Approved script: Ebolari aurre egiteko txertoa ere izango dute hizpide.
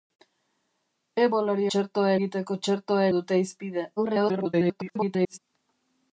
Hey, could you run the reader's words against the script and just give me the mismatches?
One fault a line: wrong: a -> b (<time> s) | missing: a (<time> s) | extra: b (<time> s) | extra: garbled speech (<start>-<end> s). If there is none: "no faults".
wrong: aurre -> txertoa (1.7 s)
missing: ere izango (3.1 s)
extra: garbled speech (4.0-5.4 s)